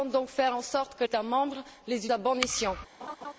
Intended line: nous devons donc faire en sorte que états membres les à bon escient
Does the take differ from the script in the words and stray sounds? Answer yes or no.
yes